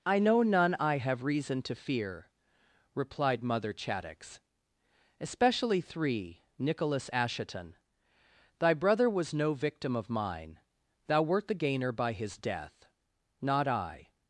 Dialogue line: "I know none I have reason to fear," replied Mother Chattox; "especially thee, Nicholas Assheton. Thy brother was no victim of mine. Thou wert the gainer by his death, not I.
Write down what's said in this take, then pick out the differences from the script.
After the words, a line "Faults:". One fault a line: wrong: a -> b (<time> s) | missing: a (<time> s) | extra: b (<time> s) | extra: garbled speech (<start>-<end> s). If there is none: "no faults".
"I know none I have reason to fear," replied Mother Chattox; "especially three, Nicholas Assheton. Thy brother was no victim of mine. Thou wert the gainer by his death, not I.
Faults:
wrong: thee -> three (5.8 s)